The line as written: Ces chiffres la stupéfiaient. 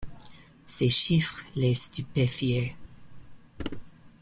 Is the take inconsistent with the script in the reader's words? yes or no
yes